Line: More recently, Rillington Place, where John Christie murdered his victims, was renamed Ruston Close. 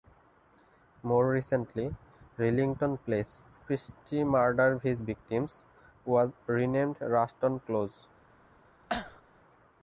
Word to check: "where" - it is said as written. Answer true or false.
false